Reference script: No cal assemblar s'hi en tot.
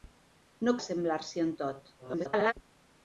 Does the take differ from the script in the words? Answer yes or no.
yes